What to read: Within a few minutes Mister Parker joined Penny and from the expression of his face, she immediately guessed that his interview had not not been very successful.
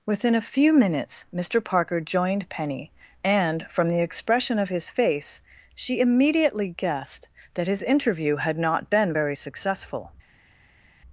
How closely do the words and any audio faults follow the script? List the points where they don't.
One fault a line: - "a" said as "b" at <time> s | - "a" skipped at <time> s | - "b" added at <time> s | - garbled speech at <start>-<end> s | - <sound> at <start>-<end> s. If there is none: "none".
- "not" skipped at 8.9 s